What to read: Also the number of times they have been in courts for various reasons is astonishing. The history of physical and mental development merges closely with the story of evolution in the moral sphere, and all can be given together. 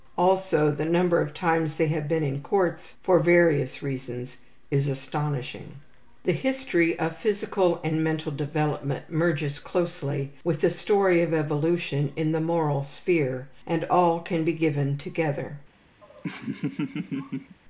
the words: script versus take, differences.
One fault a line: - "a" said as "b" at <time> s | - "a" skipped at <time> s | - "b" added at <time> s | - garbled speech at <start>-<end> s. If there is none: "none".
none